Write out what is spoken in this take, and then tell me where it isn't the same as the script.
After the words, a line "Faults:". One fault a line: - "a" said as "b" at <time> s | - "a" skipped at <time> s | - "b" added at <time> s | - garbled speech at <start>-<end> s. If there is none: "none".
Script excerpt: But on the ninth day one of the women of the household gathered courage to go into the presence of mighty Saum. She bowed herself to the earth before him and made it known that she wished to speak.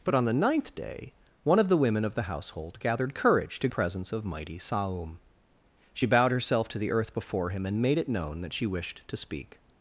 But on the ninth day one of the women of the household gathered courage to presence of mighty Saum. She bowed herself to the earth before him and made it known that she wished to speak.
Faults:
- "go into the" skipped at 3.7 s